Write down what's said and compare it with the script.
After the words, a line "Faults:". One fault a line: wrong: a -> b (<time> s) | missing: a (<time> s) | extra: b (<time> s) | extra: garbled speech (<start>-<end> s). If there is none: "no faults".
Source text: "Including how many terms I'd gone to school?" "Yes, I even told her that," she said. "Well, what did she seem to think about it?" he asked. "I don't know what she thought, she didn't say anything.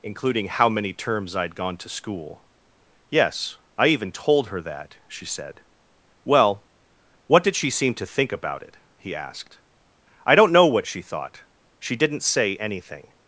"Including how many terms I'd gone to school?" "Yes, I even told her that," she said. "Well, what did she seem to think about it?" he asked. "I don't know what she thought, she didn't say anything.
Faults:
no faults